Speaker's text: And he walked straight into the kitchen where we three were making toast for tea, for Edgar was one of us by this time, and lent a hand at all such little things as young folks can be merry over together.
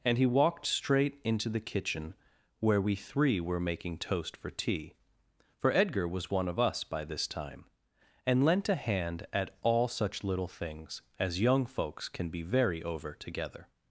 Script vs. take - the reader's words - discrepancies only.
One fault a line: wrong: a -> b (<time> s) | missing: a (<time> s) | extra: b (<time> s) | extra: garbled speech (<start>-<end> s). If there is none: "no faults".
wrong: merry -> very (12.4 s)